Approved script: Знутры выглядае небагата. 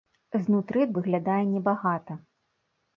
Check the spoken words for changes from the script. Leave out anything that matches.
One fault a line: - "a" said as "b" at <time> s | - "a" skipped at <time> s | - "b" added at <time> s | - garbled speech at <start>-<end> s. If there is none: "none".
none